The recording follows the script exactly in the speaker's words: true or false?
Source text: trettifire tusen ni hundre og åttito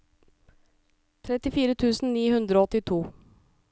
true